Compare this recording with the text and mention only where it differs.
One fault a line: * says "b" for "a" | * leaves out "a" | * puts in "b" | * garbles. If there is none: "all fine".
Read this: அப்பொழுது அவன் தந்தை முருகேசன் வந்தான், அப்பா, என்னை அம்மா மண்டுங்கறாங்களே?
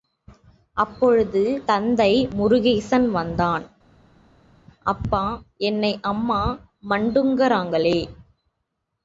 * leaves out "அவன்"